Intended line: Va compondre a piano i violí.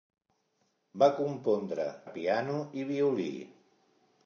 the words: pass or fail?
pass